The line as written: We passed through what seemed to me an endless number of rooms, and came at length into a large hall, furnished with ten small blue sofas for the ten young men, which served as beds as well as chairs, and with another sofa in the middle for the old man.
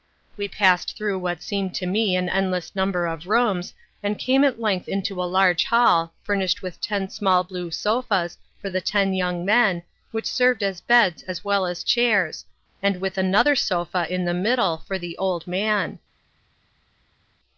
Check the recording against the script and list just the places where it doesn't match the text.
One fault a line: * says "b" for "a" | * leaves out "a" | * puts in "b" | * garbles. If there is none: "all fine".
all fine